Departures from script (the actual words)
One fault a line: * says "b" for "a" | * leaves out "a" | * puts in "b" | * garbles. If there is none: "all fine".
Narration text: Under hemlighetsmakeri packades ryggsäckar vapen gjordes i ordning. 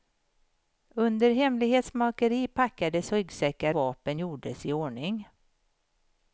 all fine